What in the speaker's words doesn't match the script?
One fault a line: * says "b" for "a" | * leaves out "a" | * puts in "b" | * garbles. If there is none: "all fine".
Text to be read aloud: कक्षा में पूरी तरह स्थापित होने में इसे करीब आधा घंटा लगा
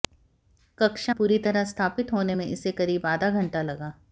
* leaves out "में"